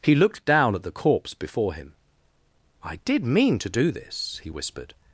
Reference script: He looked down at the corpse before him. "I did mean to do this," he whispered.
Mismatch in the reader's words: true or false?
false